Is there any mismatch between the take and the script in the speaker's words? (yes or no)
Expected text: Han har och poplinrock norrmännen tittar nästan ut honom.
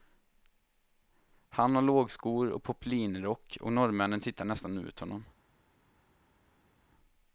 yes